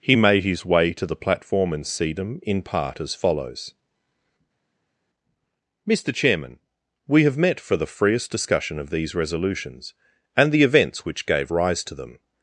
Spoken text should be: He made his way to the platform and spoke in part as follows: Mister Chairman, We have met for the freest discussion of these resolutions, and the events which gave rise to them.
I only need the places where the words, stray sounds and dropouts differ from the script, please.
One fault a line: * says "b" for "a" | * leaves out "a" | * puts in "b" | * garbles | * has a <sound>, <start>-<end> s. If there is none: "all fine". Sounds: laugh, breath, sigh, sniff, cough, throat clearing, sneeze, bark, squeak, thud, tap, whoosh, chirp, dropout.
* says "sedum" for "spoke"